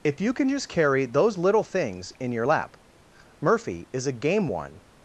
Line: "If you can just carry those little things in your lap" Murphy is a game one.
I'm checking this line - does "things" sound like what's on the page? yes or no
yes